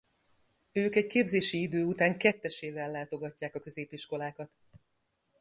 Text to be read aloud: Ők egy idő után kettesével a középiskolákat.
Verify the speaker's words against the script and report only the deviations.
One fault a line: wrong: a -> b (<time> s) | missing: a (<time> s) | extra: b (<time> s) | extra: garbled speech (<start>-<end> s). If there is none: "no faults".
extra: képzési (1.1 s)
extra: látogatják (2.9 s)